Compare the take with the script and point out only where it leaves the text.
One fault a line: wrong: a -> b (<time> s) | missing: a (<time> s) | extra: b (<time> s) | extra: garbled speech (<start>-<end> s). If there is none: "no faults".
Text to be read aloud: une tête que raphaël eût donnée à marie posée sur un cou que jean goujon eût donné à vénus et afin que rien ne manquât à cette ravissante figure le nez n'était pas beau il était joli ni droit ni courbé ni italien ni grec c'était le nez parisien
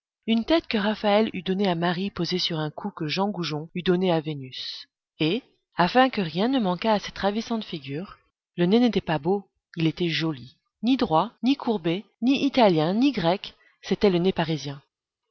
no faults